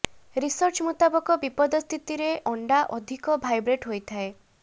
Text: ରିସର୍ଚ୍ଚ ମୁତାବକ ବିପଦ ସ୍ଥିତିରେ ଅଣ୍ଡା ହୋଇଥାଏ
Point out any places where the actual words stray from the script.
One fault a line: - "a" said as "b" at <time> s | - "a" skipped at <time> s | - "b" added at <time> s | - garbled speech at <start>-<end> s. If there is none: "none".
- "ଅଧିକ ଭାଇବ୍ରେଟ" added at 3.0 s